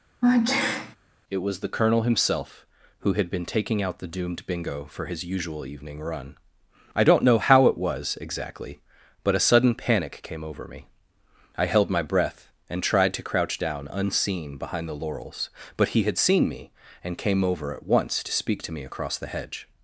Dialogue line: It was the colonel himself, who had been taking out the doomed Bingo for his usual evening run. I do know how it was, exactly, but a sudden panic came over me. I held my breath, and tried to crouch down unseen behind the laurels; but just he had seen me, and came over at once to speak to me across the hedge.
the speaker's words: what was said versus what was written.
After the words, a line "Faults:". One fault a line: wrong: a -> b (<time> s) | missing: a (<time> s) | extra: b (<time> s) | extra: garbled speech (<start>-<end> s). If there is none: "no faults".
It was the colonel himself, who had been taking out the doomed Bingo for his usual evening run. I don't know how it was, exactly, but a sudden panic came over me. I held my breath, and tried to crouch down unseen behind the laurels; but he had seen me, and came over at once to speak to me across the hedge.
Faults:
wrong: do -> don't (7.0 s)
missing: just (15.9 s)